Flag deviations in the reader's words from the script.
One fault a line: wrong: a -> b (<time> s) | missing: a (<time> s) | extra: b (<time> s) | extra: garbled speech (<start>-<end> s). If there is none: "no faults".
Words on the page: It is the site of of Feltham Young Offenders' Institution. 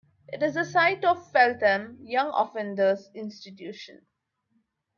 missing: of (1.3 s)